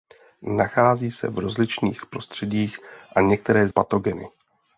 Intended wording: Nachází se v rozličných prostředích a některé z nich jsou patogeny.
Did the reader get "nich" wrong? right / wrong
wrong